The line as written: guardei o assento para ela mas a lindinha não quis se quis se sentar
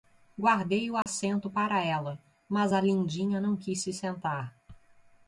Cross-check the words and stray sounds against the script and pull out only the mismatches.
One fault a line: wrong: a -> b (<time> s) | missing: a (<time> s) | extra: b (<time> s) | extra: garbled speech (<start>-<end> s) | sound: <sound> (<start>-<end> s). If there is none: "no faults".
sound: dropout (1.0-1.1 s)
missing: quis se (3.9 s)